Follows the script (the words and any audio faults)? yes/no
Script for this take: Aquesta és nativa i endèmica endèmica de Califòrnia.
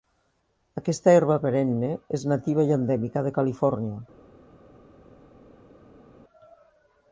no